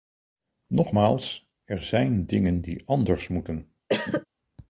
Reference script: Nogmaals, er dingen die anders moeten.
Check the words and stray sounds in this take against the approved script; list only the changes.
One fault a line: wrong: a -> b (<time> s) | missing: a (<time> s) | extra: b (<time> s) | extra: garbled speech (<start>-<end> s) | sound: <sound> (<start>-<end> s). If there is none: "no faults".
extra: zijn (1.8 s)
sound: cough (3.9-4.3 s)